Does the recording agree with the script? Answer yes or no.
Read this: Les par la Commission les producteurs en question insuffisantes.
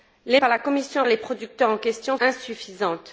yes